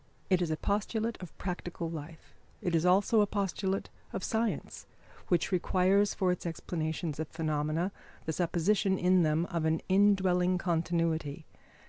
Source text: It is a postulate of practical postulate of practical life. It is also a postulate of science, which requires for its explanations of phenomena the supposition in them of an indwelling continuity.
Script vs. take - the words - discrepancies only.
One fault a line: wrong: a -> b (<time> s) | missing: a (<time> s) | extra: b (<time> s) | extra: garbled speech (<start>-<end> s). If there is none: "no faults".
missing: postulate of practical (1.9 s)